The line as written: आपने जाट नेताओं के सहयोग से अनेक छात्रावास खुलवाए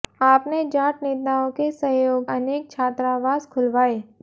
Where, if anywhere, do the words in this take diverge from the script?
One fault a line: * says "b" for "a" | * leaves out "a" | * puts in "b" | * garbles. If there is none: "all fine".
* leaves out "से"